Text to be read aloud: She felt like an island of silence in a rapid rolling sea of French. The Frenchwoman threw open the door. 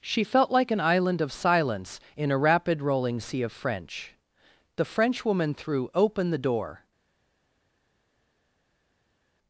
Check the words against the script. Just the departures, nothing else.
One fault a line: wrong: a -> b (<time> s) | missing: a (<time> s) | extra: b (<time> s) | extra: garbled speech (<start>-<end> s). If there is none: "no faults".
no faults